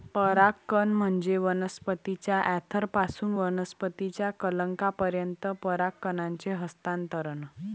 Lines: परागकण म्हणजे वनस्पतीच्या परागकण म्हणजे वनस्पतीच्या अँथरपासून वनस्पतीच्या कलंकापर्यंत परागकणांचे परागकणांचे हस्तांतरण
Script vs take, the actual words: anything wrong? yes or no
yes